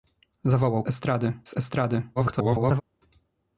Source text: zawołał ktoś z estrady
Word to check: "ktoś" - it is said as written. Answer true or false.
false